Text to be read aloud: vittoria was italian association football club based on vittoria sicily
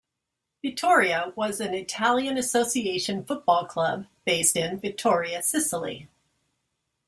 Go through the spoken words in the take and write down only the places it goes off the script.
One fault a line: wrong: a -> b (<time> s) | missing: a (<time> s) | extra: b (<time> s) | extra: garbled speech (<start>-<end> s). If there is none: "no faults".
extra: an (1.6 s)
wrong: on -> in (4.5 s)